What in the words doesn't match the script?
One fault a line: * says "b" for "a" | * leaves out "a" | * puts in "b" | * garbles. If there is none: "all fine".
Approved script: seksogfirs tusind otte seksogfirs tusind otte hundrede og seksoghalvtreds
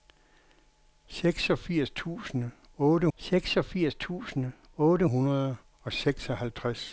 all fine